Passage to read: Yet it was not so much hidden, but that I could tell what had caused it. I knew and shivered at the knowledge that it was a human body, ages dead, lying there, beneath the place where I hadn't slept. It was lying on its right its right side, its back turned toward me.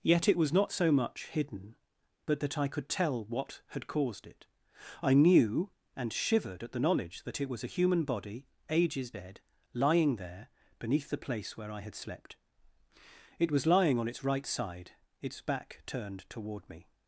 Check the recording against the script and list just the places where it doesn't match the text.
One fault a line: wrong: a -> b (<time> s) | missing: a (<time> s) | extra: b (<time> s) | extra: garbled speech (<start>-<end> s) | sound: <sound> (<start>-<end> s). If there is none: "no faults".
wrong: hadn't -> had (11.8 s)
missing: its right (14.5 s)